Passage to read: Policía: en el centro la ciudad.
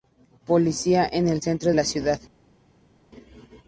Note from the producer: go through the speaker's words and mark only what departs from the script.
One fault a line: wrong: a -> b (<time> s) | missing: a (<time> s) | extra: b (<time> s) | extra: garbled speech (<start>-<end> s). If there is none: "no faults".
no faults